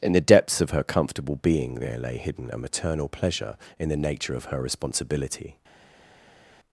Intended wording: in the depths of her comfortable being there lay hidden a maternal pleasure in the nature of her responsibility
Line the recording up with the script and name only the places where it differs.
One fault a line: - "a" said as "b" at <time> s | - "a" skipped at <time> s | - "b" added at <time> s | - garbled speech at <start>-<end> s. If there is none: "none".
none